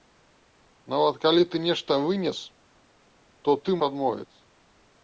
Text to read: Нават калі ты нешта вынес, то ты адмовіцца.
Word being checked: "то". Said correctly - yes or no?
yes